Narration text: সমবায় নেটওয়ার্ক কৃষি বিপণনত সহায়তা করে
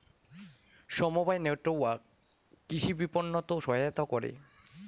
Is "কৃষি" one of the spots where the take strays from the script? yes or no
no